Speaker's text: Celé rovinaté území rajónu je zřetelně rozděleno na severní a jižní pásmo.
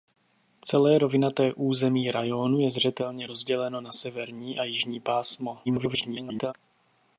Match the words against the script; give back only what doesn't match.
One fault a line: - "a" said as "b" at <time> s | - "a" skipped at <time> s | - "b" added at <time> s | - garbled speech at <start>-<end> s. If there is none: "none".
- garbled speech at 5.7-6.5 s